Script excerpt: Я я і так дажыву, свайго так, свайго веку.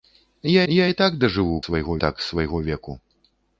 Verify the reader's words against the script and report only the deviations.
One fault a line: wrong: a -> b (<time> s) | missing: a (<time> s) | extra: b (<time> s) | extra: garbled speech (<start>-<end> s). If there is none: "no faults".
no faults